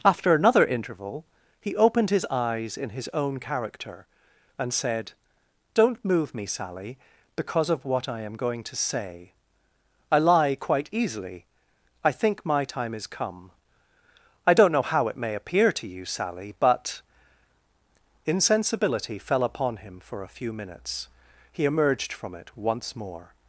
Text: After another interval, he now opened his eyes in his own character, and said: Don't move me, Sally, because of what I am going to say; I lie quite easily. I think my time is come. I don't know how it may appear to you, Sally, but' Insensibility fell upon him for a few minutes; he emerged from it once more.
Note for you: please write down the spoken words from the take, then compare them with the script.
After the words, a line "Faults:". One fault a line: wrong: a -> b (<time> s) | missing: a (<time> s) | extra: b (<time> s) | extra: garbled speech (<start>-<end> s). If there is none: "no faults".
After another interval, he opened his eyes in his own character, and said: Don't move me, Sally, because of what I am going to say; I lie quite easily. I think my time is come. I don't know how it may appear to you, Sally, but' Insensibility fell upon him for a few minutes; he emerged from it once more.
Faults:
missing: now (1.8 s)